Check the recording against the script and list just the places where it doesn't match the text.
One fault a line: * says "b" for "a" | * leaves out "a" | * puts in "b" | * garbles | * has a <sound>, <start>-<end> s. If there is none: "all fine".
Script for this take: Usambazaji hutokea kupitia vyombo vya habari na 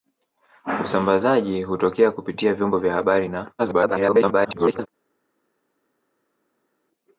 * garbles